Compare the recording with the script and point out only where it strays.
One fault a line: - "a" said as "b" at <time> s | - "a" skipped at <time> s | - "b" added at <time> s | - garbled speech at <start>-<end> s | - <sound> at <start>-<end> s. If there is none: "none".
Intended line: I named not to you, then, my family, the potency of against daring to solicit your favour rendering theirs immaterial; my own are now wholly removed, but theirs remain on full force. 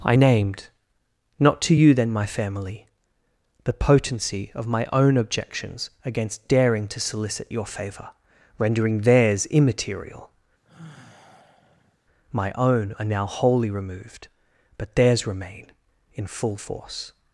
- "my own objections" added at 4.7 s
- sigh at 10.6-12.0 s
- "on" said as "in" at 16.2 s